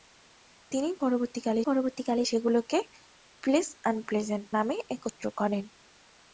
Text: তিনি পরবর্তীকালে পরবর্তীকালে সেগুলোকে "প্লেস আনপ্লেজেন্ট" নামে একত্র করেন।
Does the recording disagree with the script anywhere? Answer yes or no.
no